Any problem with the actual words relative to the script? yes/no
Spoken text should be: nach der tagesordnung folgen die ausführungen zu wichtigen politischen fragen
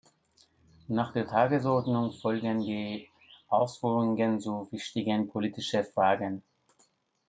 no